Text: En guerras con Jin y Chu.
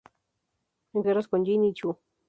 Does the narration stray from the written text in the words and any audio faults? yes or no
no